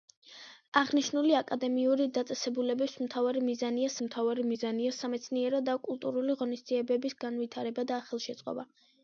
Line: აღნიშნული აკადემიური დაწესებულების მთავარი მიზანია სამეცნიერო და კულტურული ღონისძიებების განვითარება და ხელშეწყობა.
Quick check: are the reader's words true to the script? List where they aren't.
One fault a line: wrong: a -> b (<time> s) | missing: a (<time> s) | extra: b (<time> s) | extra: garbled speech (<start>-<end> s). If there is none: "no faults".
extra: მთავარი მიზანია (4.0 s)